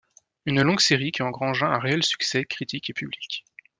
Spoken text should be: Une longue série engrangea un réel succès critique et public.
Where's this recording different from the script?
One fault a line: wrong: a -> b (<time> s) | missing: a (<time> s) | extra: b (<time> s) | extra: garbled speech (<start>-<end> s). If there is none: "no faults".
extra: qui (1.1 s)